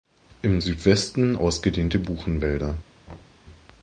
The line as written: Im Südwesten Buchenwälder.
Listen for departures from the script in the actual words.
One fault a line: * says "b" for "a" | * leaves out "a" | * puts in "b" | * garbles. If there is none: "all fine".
* puts in "ausgedehnte"